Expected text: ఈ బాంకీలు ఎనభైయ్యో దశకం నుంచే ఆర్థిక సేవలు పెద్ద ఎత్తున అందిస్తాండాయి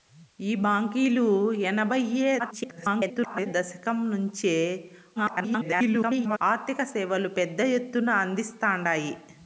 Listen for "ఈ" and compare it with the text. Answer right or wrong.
right